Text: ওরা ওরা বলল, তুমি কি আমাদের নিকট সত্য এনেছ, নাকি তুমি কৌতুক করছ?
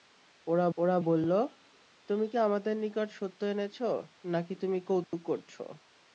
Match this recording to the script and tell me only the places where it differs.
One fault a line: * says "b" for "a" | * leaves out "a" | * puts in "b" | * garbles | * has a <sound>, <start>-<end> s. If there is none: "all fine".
* has a dropout, 5.0-5.1 s